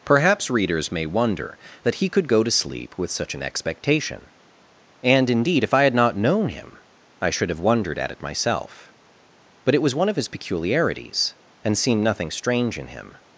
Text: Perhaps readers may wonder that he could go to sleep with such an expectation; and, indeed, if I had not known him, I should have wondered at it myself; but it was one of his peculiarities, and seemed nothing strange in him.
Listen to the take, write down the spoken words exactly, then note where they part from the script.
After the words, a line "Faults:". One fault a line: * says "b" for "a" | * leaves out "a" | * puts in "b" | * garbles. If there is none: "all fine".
Perhaps readers may wonder that he could go to sleep with such an expectation; and, indeed, if I had not known him, I should have wondered at it myself; but it was one of his peculiarities, and seemed nothing strange in him.
Faults:
all fine